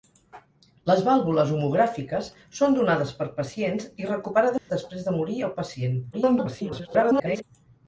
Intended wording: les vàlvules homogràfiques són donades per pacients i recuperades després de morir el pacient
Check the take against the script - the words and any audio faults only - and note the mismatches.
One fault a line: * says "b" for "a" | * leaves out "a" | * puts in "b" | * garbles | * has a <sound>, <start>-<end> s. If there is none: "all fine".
* has a dropout, 4.6-4.7 s
* garbles